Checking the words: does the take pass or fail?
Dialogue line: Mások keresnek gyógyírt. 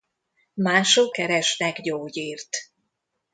pass